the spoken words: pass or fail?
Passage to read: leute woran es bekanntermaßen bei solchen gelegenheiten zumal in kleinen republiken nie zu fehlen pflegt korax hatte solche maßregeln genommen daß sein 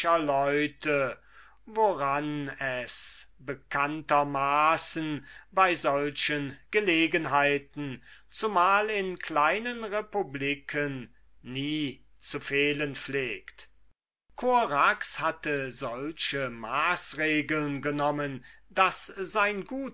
pass